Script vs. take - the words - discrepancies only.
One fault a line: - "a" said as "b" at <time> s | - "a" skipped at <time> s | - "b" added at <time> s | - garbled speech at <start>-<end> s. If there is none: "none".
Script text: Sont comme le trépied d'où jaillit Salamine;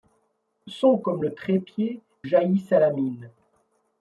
- "d'où" skipped at 2.0 s